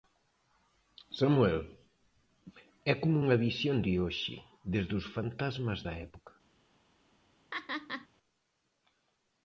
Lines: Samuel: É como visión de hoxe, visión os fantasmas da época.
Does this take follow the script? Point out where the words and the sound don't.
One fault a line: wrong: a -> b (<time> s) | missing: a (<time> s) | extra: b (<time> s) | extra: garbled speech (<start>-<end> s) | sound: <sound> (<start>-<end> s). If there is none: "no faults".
extra: unha (3.2 s)
wrong: visión -> desde (4.7 s)
sound: laugh (7.5-8.1 s)